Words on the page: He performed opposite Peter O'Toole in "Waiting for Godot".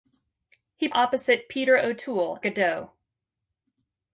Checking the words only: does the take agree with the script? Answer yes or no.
no